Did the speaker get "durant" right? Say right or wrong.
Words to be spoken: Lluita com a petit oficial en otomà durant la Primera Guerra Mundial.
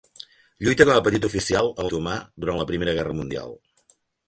right